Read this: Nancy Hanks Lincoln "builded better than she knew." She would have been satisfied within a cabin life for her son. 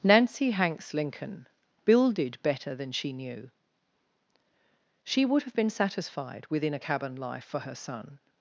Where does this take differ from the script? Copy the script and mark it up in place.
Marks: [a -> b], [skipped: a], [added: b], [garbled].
Nancy Hanks Lincoln "builded better than she knew." She would have been satisfied within a cabin life for her son.